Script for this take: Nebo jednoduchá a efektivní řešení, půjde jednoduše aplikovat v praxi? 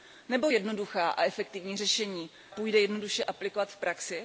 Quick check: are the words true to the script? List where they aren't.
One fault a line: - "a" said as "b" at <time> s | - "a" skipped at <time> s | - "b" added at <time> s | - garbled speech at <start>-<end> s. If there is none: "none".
none